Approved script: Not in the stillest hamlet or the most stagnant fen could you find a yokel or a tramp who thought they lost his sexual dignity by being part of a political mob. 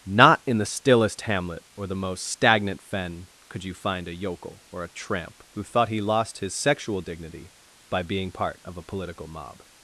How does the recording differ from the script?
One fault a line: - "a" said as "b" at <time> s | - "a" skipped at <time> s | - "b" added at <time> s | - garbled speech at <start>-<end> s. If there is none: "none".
- "they" said as "he" at 5.9 s